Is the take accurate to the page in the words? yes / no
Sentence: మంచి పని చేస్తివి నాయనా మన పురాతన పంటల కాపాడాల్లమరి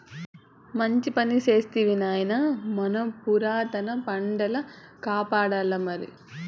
yes